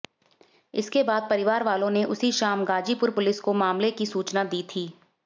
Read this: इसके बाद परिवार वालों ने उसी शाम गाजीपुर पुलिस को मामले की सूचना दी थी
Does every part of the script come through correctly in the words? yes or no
yes